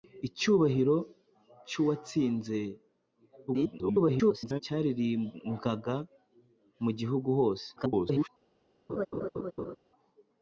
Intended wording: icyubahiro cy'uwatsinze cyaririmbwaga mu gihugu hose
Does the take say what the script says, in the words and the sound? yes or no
no